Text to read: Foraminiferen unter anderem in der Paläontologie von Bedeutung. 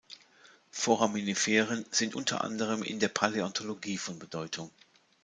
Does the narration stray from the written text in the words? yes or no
yes